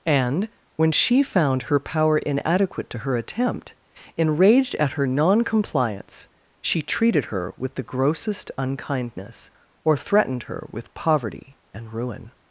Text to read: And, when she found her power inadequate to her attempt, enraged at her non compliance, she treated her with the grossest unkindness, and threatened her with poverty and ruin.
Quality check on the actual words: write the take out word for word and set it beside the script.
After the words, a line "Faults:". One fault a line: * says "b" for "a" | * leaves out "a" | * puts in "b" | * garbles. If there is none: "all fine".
And, when she found her power inadequate to her attempt, enraged at her non compliance, she treated her with the grossest unkindness, or threatened her with poverty and ruin.
Faults:
* says "or" for "and"